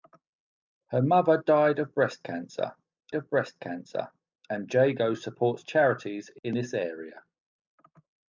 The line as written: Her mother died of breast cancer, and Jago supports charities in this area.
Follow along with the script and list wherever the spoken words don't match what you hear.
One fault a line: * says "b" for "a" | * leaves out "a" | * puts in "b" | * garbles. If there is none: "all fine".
* puts in "of breast cancer"